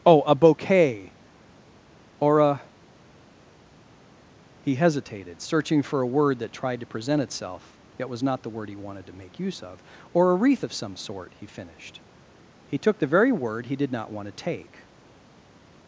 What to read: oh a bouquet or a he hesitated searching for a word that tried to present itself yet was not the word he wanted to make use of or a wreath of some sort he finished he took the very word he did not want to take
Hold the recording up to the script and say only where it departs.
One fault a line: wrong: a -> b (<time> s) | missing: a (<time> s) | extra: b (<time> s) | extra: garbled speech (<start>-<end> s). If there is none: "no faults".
no faults